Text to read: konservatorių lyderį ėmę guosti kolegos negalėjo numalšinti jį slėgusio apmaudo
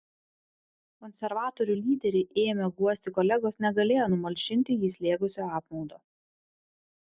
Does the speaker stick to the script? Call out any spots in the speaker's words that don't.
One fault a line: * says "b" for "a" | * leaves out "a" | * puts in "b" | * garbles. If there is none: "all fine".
all fine